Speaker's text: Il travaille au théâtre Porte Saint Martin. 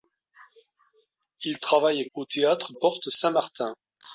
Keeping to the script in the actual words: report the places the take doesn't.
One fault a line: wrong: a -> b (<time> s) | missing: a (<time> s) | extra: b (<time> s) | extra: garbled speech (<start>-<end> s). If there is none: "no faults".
no faults